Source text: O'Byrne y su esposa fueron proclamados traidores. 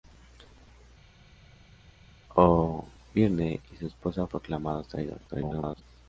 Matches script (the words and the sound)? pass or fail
fail